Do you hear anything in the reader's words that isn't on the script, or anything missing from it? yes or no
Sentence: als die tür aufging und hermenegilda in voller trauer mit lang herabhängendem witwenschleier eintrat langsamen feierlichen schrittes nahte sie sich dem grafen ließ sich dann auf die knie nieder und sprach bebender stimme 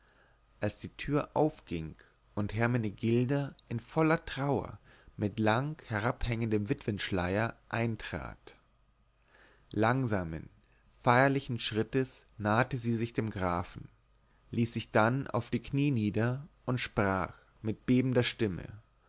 yes